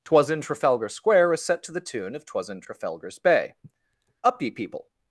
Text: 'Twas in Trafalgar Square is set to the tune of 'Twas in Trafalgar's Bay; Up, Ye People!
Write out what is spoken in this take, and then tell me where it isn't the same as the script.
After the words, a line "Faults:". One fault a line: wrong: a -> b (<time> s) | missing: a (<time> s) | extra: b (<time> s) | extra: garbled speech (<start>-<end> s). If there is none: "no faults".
'Twas in Trafalgar Square is set to the tune of 'Twas in Trafalgar's Bay; Up, Ye People!
Faults:
no faults